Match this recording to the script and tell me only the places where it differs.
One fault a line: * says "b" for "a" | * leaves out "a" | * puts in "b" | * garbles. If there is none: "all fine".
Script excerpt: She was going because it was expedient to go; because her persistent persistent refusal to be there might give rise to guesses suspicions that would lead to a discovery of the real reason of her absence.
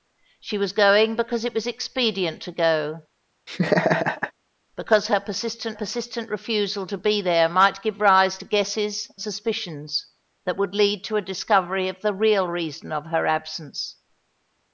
all fine